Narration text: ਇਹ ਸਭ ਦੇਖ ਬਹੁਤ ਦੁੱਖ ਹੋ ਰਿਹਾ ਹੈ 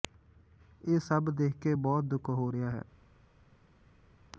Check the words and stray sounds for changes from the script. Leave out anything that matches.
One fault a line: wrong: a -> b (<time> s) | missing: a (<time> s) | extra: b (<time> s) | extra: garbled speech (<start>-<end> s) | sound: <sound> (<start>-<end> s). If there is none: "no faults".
extra: ਕੇ (1.6 s)